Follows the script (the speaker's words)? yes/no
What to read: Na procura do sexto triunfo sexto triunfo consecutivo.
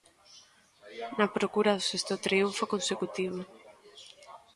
no